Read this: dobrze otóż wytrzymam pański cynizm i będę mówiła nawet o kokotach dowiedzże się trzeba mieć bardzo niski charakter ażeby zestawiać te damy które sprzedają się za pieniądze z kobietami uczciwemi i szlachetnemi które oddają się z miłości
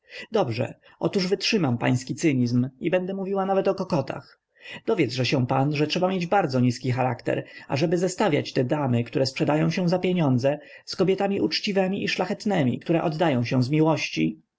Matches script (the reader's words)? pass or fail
fail